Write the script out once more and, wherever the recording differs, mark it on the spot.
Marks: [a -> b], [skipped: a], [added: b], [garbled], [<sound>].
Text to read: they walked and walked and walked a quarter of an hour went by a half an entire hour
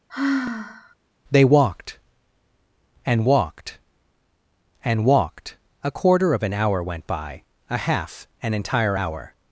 [sigh] they walked and walked and walked a quarter of an hour went by a half an entire hour